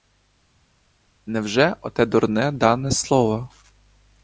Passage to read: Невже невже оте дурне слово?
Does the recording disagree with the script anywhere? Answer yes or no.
yes